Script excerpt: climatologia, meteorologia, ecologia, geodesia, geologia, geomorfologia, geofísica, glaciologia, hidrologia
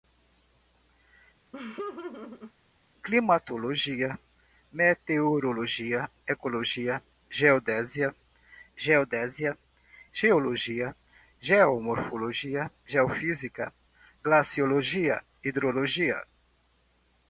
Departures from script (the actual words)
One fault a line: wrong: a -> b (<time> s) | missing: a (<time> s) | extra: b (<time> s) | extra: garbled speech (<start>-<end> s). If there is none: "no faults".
extra: geodesia (8.8 s)